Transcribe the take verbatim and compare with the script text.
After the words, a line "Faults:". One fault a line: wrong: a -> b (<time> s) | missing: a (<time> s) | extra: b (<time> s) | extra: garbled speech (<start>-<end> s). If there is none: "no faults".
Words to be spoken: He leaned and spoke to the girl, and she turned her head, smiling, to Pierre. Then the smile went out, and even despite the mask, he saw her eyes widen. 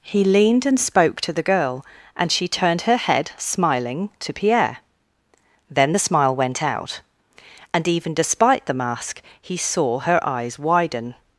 He leaned and spoke to the girl, and she turned her head, smiling, to Pierre. Then the smile went out, and even despite the mask, he saw her eyes widen.
Faults:
no faults